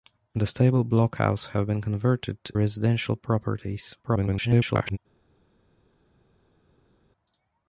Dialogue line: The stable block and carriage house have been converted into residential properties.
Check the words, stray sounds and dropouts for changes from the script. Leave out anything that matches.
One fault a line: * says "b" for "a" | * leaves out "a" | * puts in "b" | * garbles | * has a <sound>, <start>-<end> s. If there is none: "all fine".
* leaves out "and carriage"
* leaves out "into"
* garbles